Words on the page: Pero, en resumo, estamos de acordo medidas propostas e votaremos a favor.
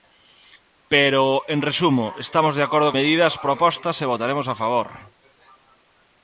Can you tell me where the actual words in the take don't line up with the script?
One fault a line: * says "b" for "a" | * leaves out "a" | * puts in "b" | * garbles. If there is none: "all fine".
all fine